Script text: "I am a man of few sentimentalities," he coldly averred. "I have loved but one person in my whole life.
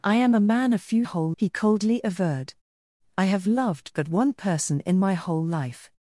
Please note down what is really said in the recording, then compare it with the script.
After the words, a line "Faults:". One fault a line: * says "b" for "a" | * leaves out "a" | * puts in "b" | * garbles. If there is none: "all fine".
"I am a man of few whole," he coldly averred. "I have loved but one person in my whole life.
Faults:
* says "whole" for "sentimentalities"